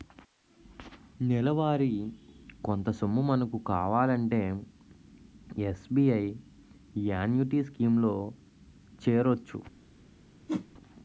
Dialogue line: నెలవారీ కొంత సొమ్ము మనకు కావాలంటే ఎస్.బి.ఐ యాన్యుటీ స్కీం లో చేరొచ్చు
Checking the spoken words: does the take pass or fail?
pass